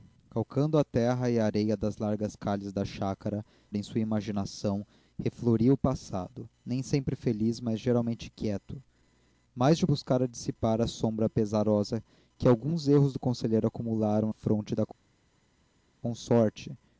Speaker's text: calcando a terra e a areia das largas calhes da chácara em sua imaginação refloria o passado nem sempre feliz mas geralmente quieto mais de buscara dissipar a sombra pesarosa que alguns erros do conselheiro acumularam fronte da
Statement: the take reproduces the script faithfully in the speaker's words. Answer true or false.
true